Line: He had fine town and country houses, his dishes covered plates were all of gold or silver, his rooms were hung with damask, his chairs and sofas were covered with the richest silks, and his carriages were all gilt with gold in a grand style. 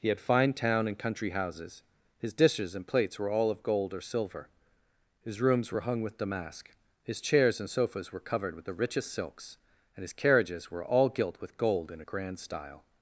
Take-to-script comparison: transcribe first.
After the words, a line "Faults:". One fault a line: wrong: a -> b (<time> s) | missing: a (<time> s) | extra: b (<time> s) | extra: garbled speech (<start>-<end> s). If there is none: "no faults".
He had fine town and country houses, his dishes and plates were all of gold or silver, his rooms were hung with damask, his chairs and sofas were covered with the richest silks, and his carriages were all gilt with gold in a grand style.
Faults:
wrong: covered -> and (2.7 s)